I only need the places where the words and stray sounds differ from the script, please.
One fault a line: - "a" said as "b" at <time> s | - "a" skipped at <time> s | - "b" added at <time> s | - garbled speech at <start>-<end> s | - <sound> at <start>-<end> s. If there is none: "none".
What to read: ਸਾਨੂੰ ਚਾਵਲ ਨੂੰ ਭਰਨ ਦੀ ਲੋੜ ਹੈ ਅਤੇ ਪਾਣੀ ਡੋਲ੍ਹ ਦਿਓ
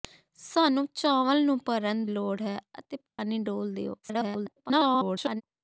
- "ਦੀ" skipped at 2.0 s
- dropout at 3.1-3.2 s
- garbled speech at 4.0-5.4 s